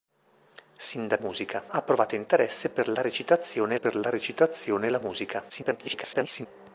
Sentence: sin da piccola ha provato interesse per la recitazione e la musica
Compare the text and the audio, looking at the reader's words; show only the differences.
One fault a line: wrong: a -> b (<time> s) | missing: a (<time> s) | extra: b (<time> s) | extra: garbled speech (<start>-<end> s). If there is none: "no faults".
wrong: piccola -> musica (1.2 s)
extra: per la recitazione (3.8 s)
extra: garbled speech (5.5-6.5 s)